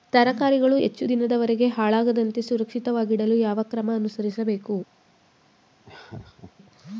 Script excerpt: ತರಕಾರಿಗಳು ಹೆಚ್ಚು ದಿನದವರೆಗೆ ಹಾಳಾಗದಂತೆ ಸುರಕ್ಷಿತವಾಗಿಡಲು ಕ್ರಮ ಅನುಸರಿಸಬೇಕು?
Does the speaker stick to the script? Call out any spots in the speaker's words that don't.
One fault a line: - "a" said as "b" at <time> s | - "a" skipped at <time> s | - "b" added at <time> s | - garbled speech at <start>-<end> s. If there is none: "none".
- "ಯಾವ" added at 3.4 s